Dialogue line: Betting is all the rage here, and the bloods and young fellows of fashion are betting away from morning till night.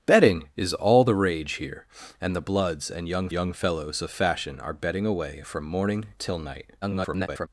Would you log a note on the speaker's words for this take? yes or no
yes